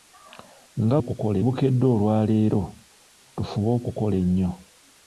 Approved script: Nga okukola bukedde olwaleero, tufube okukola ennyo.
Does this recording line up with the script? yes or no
yes